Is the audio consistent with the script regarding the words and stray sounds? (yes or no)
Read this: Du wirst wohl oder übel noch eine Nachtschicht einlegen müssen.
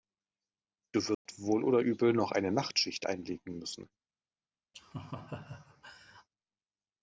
no